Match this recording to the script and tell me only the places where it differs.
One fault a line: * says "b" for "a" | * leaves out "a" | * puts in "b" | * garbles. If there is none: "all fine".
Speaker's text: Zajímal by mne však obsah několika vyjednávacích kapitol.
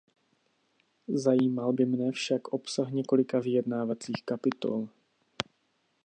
all fine